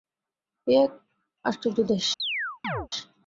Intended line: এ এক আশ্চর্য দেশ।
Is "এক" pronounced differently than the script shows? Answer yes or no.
no